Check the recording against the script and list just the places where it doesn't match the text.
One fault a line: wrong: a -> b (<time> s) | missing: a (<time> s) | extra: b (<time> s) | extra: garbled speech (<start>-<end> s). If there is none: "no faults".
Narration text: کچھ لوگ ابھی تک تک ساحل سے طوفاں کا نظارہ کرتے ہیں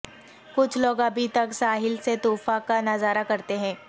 missing: تک (1.5 s)